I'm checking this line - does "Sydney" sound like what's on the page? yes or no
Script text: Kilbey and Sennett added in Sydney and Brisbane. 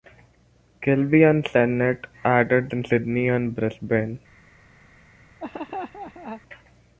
yes